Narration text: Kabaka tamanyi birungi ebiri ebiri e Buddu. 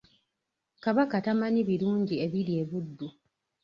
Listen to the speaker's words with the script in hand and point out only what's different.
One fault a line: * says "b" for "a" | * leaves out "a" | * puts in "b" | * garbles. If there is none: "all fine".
* leaves out "ebiri"